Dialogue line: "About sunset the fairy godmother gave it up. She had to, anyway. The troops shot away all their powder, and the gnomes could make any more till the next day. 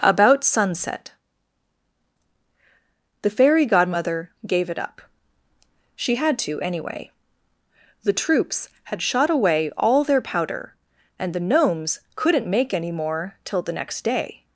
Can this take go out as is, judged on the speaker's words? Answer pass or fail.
fail